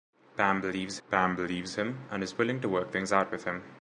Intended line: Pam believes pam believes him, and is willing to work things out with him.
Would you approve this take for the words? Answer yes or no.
yes